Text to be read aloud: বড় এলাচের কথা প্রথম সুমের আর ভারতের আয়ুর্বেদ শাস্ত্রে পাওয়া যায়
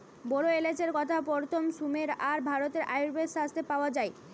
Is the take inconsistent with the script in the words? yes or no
no